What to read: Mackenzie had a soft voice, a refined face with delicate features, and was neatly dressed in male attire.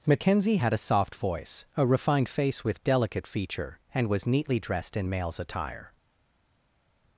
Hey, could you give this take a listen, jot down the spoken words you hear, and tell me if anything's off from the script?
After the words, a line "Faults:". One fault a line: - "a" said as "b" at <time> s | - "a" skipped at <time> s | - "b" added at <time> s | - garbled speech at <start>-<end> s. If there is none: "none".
Mackenzie had a soft voice, a refined face with delicate feature, and was neatly dressed in males attire.
Faults:
- "features" said as "feature" at 3.3 s
- "male" said as "males" at 5.1 s